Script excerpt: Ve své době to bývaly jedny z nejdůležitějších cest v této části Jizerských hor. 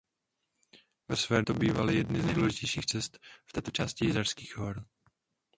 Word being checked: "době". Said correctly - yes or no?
no